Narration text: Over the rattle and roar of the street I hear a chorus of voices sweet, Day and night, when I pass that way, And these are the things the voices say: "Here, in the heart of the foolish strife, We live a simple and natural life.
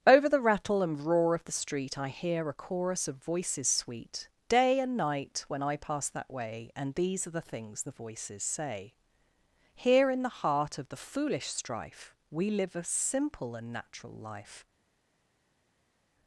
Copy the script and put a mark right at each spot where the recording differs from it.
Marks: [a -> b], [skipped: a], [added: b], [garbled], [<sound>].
Over the rattle and roar of the street I hear a chorus of voices sweet, Day and night, when I pass that way, And these are the things the voices say: "Here, in the heart of the foolish strife, We live a simple and natural life.